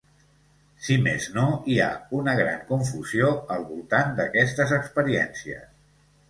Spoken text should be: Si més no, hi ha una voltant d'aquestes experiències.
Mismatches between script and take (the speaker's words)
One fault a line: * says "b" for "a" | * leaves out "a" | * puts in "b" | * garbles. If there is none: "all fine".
* puts in "gran confusió al"